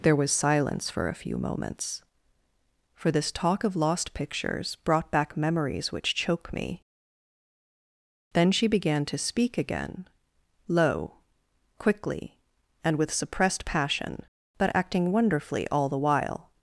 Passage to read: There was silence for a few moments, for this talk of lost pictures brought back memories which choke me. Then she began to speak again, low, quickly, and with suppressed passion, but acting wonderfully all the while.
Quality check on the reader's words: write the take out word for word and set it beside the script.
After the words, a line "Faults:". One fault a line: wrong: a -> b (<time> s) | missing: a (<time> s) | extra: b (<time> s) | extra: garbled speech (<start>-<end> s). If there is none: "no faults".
There was silence for a few moments, for this talk of lost pictures brought back memories which choke me. Then she began to speak again, low, quickly, and with suppressed passion, but acting wonderfully all the while.
Faults:
no faults